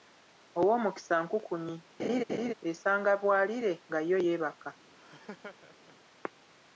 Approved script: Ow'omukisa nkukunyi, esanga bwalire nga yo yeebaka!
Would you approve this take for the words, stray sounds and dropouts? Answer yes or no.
no